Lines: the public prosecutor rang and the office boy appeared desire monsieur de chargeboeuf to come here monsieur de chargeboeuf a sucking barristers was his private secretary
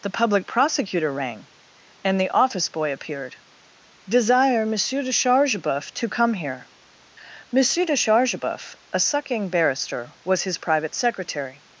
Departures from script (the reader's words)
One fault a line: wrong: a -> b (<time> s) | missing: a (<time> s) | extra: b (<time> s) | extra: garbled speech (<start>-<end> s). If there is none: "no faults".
wrong: barristers -> barrister (9.5 s)